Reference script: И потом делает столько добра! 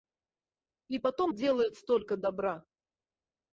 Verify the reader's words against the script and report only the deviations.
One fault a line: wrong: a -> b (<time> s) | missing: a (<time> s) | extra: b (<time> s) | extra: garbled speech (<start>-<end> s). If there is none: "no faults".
no faults